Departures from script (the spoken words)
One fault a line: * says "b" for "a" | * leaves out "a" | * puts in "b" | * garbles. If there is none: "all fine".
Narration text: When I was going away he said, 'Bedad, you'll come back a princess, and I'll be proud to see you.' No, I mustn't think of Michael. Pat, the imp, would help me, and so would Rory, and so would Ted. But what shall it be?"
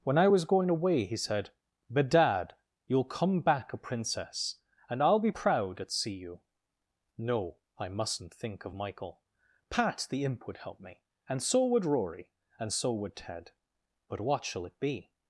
* says "at" for "to"